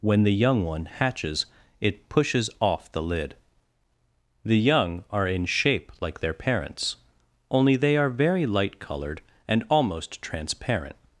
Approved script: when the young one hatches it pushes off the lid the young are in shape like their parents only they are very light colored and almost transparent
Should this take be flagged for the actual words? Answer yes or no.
no